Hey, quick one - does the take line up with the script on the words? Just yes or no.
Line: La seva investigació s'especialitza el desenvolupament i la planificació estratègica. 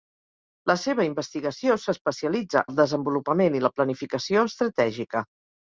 yes